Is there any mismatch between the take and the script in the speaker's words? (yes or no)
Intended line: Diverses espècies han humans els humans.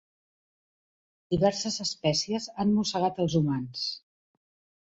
yes